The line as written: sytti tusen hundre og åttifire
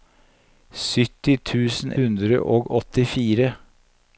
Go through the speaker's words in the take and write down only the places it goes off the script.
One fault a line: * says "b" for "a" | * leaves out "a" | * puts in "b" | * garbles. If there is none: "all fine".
all fine